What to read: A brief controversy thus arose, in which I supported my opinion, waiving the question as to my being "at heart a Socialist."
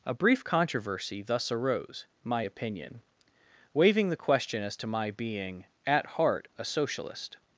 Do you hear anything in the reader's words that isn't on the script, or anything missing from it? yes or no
yes